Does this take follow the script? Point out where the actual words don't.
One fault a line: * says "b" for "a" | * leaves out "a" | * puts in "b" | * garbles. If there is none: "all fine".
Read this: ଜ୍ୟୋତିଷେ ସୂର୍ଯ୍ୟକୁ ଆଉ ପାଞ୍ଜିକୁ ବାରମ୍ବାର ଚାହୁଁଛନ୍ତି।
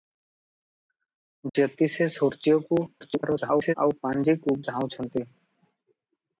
* garbles
* leaves out "ବାରମ୍ବାର"